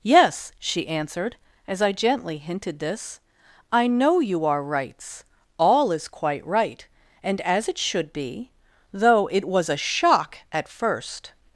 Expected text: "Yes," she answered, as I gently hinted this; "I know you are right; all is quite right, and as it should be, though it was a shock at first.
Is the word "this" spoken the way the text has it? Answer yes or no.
yes